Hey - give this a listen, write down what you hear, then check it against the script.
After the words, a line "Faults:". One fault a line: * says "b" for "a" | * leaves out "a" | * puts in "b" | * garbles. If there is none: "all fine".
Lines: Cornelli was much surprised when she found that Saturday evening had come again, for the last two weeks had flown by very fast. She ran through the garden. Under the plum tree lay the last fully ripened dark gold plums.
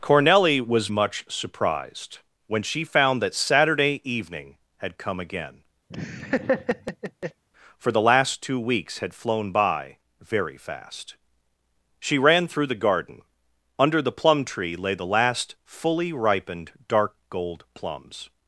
Cornelli was much surprised when she found that Saturday evening had come again, for the last two weeks had flown by very fast. She ran through the garden. Under the plum tree lay the last fully ripened dark gold plums.
Faults:
all fine